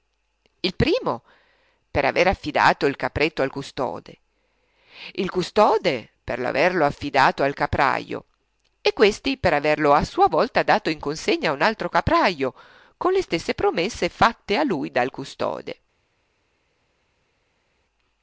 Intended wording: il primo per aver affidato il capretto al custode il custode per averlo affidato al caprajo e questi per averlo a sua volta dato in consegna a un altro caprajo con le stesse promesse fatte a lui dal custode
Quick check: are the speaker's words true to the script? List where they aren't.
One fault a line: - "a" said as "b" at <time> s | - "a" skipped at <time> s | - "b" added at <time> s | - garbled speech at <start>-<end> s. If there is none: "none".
none